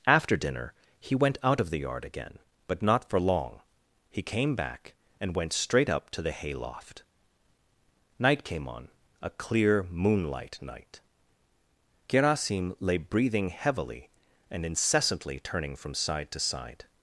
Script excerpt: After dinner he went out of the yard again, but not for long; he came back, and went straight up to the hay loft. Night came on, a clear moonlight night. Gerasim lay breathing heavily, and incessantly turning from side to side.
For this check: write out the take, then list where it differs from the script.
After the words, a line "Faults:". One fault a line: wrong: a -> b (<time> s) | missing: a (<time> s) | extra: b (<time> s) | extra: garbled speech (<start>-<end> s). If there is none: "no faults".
After dinner he went out of the yard again, but not for long; he came back, and went straight up to the hay loft. Night came on, a clear moonlight night. Gerasim lay breathing heavily, and incessantly turning from side to side.
Faults:
no faults